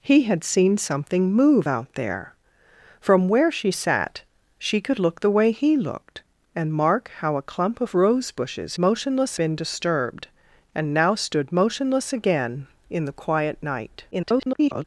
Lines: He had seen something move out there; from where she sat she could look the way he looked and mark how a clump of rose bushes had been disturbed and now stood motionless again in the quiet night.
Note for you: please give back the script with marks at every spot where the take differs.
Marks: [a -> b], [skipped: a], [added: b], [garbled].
He had seen something move out there; from where she sat she could look the way he looked and mark how a clump of rose bushes [had -> motionless] been disturbed and now stood motionless again in the quiet night. [garbled]